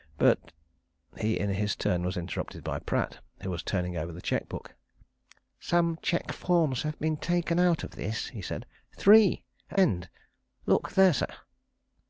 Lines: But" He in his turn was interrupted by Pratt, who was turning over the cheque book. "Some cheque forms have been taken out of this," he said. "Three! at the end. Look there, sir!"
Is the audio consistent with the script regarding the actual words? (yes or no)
no